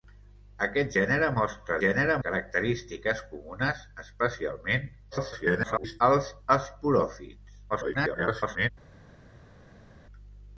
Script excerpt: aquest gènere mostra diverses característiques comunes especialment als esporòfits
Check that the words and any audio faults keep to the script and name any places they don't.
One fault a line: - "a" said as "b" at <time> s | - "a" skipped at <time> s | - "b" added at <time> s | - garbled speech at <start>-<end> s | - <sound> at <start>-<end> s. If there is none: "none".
- "diverses" said as "gènere" at 1.8 s
- garbled speech at 5.1-6.0 s
- garbled speech at 7.7-8.7 s